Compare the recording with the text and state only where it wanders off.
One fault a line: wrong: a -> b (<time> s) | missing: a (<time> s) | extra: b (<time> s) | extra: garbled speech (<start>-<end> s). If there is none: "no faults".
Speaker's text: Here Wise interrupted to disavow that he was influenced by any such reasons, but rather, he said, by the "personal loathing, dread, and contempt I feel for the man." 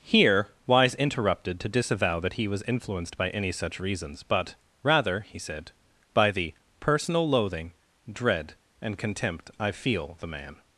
missing: for (10.2 s)